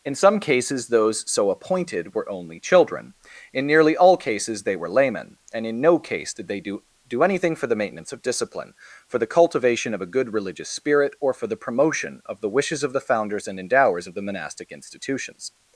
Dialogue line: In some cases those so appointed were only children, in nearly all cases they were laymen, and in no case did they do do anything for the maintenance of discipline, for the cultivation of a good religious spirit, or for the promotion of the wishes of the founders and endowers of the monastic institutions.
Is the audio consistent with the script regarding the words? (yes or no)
yes